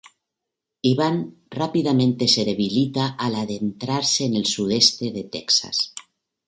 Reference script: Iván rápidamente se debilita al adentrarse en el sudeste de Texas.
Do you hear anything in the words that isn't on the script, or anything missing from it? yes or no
no